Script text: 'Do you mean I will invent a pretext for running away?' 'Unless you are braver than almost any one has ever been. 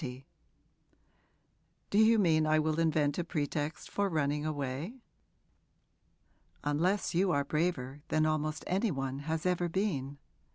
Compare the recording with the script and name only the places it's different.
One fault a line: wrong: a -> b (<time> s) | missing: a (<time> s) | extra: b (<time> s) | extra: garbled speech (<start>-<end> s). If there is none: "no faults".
no faults